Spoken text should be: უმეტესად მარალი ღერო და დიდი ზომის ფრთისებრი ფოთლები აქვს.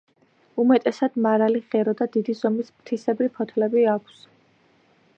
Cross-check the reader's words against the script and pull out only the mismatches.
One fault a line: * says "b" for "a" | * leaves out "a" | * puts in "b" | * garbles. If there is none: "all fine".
all fine